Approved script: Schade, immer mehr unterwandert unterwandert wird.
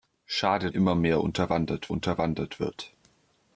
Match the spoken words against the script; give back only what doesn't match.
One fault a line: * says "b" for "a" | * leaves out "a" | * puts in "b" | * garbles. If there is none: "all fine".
all fine